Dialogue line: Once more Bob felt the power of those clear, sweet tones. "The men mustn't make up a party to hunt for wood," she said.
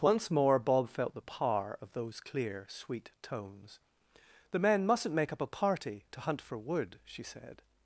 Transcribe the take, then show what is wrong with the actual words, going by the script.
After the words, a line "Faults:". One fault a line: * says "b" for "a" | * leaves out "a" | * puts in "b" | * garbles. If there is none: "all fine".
Once more Bob felt the power of those clear, sweet tones. "The men mustn't make up a party to hunt for wood," she said.
Faults:
all fine